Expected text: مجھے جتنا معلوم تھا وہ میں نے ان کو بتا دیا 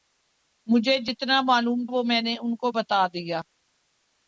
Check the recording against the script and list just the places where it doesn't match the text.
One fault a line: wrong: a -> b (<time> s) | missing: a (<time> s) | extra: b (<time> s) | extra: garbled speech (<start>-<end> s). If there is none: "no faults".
missing: تھا (1.9 s)